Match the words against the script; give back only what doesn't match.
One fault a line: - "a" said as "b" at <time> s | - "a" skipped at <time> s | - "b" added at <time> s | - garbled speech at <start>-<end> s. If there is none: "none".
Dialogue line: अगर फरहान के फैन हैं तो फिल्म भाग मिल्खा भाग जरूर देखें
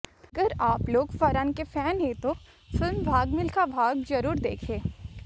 - "आप लोग" added at 0.6 s